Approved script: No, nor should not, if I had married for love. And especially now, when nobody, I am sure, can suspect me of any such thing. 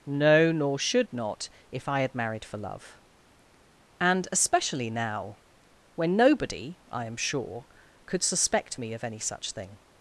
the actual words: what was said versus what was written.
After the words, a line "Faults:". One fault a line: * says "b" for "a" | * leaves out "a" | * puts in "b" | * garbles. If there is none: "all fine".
No, nor should not, if I had married for love. And especially now, when nobody, I am sure, could suspect me of any such thing.
Faults:
* says "could" for "can"